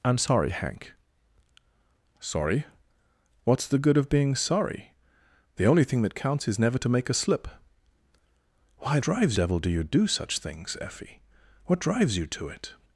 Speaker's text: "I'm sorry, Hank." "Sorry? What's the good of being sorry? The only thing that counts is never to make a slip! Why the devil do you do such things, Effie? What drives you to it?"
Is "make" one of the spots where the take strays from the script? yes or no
no